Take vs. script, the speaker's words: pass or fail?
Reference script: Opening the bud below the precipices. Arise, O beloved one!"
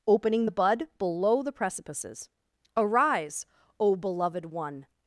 pass